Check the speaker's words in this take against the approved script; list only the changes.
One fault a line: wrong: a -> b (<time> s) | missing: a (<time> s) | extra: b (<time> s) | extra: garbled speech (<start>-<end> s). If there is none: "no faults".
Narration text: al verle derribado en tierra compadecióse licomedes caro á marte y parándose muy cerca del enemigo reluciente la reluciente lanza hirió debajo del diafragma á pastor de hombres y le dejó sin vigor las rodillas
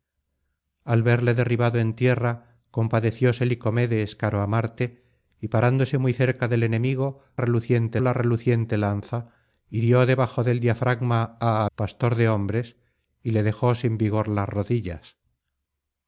no faults